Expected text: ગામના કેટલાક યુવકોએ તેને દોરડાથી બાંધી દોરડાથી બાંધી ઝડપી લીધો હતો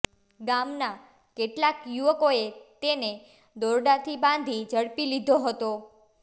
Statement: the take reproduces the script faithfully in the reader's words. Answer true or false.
false